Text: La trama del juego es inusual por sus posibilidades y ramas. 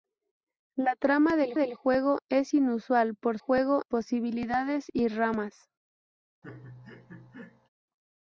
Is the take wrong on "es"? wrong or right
right